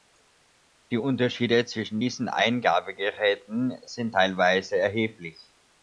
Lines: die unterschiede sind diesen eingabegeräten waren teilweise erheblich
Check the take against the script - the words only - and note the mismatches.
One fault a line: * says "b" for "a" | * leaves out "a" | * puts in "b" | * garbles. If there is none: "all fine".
* says "zwischen" for "sind"
* says "sind" for "waren"